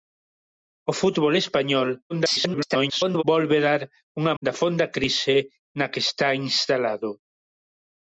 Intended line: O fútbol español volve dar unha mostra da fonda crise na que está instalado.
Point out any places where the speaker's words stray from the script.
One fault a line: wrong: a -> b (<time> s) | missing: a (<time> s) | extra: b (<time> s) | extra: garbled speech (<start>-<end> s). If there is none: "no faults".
extra: garbled speech (2.1-3.2 s)
missing: mostra (4.3 s)